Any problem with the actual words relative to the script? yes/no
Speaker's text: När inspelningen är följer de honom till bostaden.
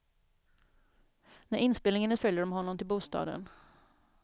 no